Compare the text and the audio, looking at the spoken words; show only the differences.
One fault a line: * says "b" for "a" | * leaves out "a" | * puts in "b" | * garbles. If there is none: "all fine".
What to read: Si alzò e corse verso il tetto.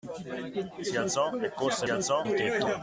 * says "alzò" for "verso"